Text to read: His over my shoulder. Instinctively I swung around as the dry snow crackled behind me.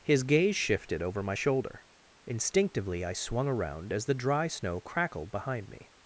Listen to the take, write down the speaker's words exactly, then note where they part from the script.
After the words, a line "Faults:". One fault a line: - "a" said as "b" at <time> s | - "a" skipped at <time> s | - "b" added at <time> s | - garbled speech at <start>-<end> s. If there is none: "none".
His gaze shifted over my shoulder. Instinctively I swung around as the dry snow crackled behind me.
Faults:
- "gaze shifted" added at 0.2 s